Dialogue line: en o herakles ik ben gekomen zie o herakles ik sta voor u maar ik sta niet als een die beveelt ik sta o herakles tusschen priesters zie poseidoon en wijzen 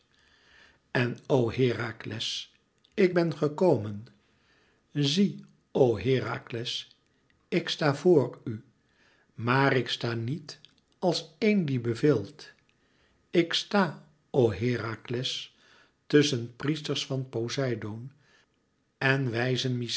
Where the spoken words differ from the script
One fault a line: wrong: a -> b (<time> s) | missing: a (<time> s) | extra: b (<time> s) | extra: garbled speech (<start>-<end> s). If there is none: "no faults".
wrong: zie -> van (17.1 s)